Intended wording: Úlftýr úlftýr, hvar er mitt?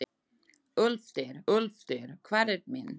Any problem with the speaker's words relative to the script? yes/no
no